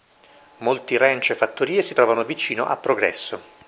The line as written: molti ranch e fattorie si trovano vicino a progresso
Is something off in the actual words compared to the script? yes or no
no